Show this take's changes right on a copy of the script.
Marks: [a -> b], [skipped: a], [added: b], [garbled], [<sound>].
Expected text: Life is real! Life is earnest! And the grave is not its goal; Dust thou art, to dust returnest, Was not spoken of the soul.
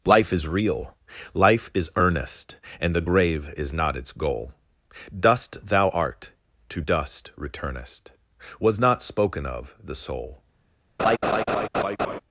Life is real! Life is earnest! And the grave is not its goal; Dust thou art, to dust returnest, Was not spoken of the soul. [laugh]